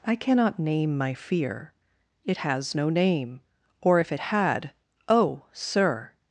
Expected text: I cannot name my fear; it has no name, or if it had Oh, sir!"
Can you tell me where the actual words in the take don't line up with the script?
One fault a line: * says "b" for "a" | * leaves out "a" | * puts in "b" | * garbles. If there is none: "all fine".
all fine